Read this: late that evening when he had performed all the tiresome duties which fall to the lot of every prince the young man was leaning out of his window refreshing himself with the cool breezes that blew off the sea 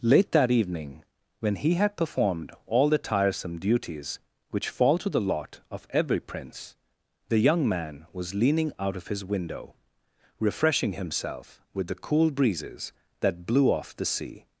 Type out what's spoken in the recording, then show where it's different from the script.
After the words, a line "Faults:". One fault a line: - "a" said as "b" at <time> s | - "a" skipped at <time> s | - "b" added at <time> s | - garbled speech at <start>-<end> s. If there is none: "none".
late that evening when he had performed all the tiresome duties which fall to the lot of every prince the young man was leaning out of his window refreshing himself with the cool breezes that blew off the sea
Faults:
none